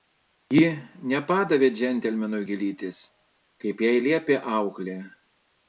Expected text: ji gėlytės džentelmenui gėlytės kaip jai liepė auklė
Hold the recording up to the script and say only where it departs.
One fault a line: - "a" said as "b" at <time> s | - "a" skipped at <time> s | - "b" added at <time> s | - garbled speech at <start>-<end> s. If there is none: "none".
- "gėlytės" said as "nepadavė" at 1.1 s